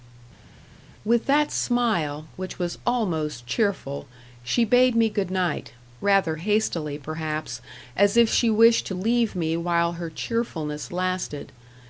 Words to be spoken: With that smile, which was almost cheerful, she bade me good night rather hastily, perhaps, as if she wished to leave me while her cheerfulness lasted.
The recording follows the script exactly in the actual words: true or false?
true